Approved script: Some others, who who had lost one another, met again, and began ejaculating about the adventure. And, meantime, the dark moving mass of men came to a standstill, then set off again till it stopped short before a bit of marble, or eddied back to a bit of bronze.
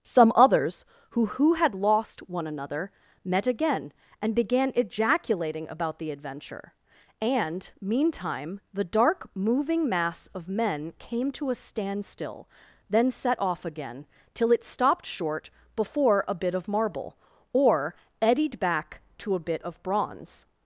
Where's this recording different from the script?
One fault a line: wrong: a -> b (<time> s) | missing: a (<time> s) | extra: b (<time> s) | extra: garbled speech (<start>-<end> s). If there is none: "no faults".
no faults